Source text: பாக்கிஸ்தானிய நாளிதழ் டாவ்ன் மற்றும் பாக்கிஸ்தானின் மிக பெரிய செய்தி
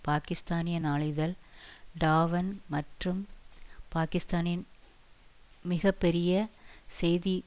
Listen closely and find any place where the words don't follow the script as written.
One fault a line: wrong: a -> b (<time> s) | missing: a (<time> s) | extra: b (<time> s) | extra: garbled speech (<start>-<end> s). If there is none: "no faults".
no faults